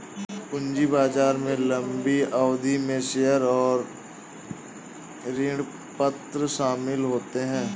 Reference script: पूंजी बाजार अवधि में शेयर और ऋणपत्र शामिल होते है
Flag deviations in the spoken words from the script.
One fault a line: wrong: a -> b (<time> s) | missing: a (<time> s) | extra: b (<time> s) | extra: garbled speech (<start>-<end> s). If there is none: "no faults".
extra: में लम्बी (1.4 s)